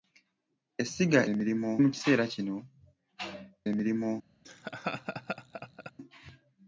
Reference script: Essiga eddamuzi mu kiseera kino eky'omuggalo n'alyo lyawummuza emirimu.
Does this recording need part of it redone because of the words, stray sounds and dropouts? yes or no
yes